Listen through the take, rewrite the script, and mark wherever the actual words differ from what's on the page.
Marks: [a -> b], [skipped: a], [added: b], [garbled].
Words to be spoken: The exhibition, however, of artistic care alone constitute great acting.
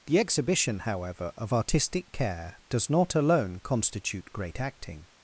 The exhibition, however, of artistic care [added: does not] alone constitute great acting.